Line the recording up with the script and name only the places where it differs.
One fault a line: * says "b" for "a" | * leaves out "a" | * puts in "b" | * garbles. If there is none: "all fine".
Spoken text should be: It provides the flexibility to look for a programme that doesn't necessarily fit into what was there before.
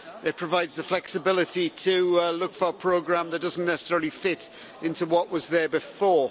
all fine